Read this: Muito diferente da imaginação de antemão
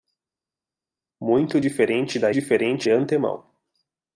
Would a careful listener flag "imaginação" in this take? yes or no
yes